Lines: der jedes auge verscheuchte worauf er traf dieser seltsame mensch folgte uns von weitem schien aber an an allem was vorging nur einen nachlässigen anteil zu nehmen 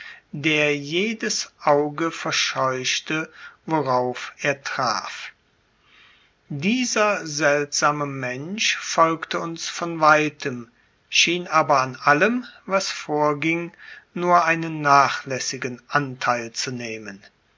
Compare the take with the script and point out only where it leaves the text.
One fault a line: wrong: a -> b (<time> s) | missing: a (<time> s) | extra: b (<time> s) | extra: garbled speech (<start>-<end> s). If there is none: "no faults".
missing: an (11.9 s)